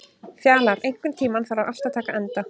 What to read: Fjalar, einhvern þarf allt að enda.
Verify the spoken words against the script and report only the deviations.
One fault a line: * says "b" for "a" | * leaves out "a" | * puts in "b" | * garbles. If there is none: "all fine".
* puts in "tímann"
* puts in "taka"